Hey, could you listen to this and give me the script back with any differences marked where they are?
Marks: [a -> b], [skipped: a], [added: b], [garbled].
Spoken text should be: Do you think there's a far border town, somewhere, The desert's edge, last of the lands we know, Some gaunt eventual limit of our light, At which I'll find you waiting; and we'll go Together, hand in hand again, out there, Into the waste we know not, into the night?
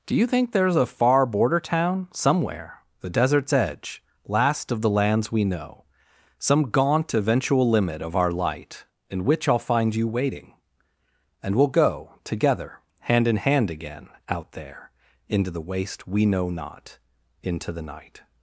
Do you think there's a far border town, somewhere, The desert's edge, last of the lands we know, Some gaunt eventual limit of our light, [At -> In] which I'll find you waiting; and we'll go Together, hand in hand again, out there, Into the waste we know not, into the night?